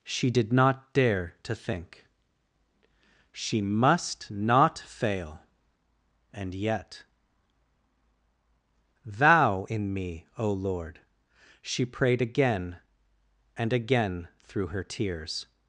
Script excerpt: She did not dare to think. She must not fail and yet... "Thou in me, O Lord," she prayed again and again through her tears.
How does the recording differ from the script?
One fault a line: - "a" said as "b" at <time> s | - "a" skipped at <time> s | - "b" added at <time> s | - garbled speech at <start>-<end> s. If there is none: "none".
none